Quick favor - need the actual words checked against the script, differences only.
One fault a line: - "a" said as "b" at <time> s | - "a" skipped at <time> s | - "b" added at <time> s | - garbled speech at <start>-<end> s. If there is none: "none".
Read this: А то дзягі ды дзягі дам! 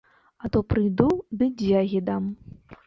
- "дзягі" said as "прыйду" at 0.7 s